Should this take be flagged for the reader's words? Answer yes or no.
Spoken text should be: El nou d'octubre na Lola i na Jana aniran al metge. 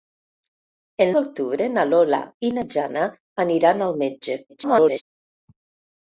yes